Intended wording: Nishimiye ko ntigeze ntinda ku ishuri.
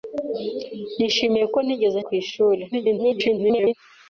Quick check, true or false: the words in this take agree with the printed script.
false